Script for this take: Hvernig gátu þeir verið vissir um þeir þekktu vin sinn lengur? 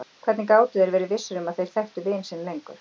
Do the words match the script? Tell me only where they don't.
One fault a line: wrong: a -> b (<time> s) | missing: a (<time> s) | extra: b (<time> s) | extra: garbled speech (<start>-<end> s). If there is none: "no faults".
extra: að (1.5 s)